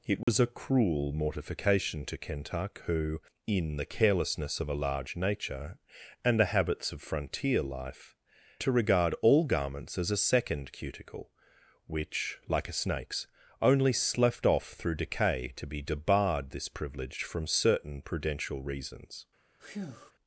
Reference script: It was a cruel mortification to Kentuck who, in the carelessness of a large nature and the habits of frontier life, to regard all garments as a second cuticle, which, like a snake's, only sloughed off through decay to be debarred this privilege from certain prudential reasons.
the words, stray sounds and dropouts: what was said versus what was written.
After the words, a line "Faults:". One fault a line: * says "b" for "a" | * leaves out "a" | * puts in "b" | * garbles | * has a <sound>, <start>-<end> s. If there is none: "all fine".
It was a cruel mortification to Kentuck who, in the carelessness of a large nature and the habits of frontier life, to regard all garments as a second cuticle, which, like a snake's, only sloughed off through decay to be debarred this privilege from certain prudential reasons.
Faults:
* has a dropout, 0.2-0.3 s
* has a breath, 19.6-20.1 s